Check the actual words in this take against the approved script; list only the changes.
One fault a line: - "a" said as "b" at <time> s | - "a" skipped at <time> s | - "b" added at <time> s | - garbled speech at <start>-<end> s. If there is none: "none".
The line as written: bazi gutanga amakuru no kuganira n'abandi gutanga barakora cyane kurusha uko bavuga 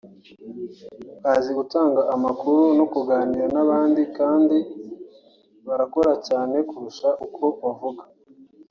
- "gutanga" said as "kandi" at 4.2 s